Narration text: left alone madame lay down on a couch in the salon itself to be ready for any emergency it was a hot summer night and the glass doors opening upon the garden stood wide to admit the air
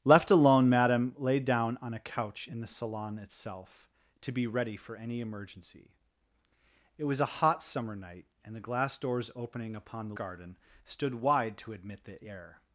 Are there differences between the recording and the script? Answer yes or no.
no